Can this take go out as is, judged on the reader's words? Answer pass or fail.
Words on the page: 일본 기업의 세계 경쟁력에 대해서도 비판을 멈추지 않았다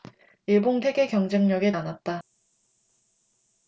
fail